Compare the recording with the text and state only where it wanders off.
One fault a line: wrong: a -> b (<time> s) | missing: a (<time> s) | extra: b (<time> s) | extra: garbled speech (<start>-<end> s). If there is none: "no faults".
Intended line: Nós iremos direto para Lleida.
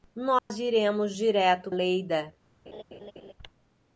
missing: para (1.7 s)